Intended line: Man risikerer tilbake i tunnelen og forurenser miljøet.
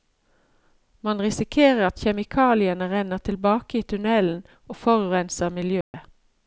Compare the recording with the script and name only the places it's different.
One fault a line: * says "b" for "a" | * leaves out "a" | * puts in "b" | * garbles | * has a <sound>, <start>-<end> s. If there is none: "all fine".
* puts in "at kjemikaliene renner"
* has a dropout, 5.8-5.9 s